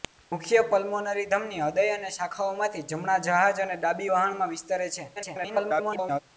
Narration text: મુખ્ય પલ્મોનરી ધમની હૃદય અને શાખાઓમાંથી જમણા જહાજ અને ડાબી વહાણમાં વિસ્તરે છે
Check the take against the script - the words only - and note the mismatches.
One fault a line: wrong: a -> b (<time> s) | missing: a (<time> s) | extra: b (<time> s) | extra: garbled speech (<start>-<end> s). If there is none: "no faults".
extra: garbled speech (5.2-6.2 s)